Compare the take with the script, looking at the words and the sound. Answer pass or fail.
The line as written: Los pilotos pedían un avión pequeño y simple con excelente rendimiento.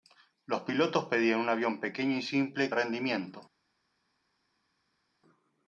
fail